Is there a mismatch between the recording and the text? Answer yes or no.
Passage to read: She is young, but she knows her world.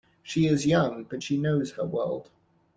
no